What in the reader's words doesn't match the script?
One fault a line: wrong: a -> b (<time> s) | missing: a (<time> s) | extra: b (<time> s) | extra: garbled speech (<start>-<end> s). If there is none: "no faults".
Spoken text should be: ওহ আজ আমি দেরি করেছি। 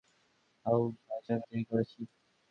no faults